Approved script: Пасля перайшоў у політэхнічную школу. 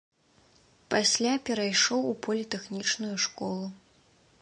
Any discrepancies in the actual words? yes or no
no